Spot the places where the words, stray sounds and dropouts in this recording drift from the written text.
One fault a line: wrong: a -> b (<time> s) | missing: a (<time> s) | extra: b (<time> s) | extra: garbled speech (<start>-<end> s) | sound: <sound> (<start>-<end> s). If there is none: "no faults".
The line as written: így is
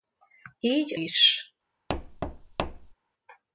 sound: thud (1.9-2.9 s)